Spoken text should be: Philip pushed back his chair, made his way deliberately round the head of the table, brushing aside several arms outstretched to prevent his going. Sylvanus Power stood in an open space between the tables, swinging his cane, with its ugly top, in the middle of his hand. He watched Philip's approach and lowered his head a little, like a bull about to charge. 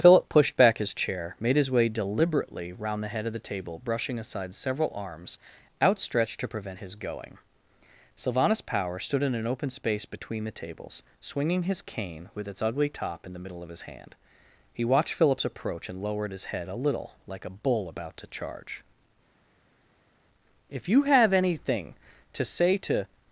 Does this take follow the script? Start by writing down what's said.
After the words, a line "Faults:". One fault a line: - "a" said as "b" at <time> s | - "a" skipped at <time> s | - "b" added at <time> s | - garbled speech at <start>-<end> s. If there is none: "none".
Philip pushed back his chair, made his way deliberately round the head of the table, brushing aside several arms outstretched to prevent his going. Sylvanus Power stood in an open space between the tables, swinging his cane, with its ugly top, in the middle of his hand. He watched Philip's approach and lowered his head a little, like a bull about to charge. "If you have anything to say to
Faults:
- "If you have anything to say to" added at 20.7 s